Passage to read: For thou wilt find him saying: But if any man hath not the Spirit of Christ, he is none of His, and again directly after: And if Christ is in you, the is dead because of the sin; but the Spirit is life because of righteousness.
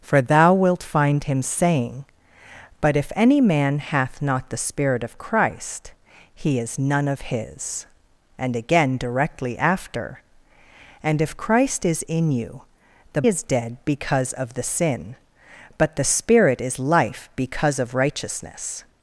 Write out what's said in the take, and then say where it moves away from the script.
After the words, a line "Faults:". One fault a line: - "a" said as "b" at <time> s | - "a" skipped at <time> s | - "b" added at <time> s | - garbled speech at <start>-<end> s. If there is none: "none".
For thou wilt find him saying: But if any man hath not the Spirit of Christ, he is none of His, and again directly after: And if Christ is in you, the is dead because of the sin; but the Spirit is life because of righteousness.
Faults:
none